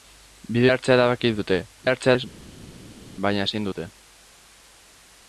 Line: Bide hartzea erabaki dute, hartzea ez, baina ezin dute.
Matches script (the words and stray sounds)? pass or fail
pass